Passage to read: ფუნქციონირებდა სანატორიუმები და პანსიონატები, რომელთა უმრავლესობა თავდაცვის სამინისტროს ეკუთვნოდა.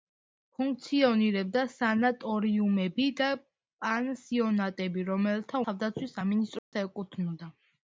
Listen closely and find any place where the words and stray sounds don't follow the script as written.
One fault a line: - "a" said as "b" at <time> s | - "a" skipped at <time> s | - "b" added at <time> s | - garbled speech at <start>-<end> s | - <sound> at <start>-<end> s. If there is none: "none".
- "უმრავლესობა" skipped at 5.7 s
- dropout at 6.6-6.7 s